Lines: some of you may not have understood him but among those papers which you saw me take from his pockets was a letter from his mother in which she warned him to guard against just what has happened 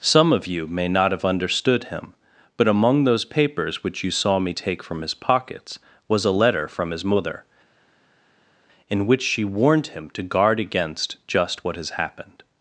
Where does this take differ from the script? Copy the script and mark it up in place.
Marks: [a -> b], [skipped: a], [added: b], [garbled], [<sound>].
some of you may not have understood him but among those papers which you saw me take from his pockets was a letter from his mother in which she warned him to guard against just what has happened